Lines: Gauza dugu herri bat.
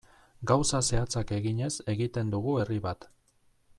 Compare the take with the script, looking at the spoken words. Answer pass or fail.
fail